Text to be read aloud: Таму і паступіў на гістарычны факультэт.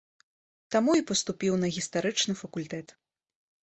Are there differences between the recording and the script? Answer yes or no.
no